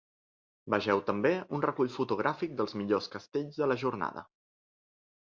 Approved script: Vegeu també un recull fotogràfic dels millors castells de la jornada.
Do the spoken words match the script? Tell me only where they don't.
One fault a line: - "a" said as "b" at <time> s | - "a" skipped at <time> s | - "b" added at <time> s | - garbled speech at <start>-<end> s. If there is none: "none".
none